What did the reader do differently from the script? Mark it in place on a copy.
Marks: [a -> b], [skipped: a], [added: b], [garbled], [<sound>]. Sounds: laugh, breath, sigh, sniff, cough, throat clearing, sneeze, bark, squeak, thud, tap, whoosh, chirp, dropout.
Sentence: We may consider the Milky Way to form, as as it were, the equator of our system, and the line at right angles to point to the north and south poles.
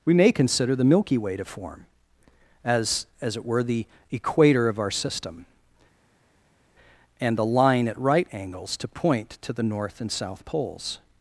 We may consider the Milky Way to form, as as it were, the equator of our system, and the line at right angles to point to the north and south poles.